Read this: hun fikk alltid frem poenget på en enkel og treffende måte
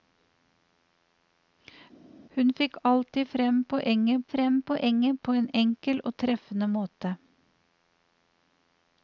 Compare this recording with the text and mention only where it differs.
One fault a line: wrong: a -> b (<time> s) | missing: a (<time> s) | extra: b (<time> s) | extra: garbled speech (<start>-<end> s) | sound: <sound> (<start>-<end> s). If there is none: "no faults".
extra: frem poenget (4.3 s)